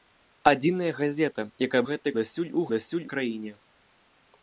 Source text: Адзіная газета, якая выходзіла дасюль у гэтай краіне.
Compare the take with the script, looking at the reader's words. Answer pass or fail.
fail